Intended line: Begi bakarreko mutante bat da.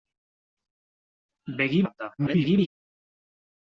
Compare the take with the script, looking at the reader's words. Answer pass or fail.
fail